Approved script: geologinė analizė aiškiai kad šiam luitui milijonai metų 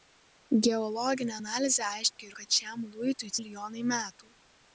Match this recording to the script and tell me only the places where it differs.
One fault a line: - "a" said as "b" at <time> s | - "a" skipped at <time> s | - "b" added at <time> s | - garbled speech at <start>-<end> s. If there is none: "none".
none